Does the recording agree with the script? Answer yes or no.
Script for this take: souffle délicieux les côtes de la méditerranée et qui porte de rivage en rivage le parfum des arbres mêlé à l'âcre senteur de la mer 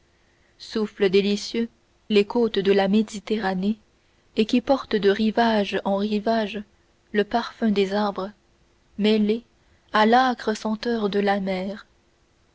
yes